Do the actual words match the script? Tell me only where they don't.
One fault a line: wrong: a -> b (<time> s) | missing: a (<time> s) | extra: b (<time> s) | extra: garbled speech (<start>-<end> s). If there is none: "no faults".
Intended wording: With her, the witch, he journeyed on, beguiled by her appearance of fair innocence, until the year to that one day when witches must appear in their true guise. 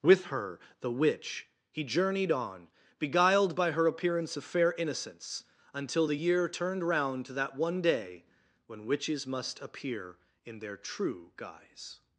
extra: turned round (6.5 s)